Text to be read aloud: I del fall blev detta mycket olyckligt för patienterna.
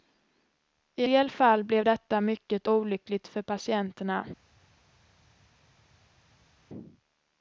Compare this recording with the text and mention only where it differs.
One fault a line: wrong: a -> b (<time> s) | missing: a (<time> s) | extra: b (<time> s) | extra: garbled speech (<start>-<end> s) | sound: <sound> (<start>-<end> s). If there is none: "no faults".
no faults